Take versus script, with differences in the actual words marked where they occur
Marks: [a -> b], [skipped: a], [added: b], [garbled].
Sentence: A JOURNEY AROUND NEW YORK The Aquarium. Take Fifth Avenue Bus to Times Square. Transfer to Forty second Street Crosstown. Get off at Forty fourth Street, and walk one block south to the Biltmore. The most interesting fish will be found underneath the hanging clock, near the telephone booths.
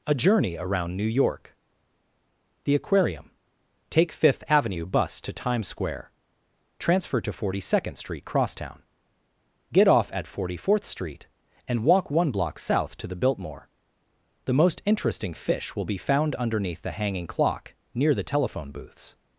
A JOURNEY AROUND NEW YORK The Aquarium. Take Fifth Avenue Bus to Times Square. Transfer to Forty second Street Crosstown. Get off at Forty fourth Street, and walk one block south to the Biltmore. The most interesting fish will be found underneath the hanging clock, near the telephone booths.